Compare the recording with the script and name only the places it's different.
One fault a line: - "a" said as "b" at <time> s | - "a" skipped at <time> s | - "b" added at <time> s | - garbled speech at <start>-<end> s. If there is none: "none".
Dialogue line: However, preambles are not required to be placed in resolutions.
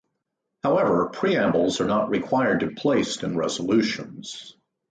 - "be" skipped at 2.7 s